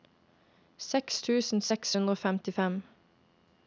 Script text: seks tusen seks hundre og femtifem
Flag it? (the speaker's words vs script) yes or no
no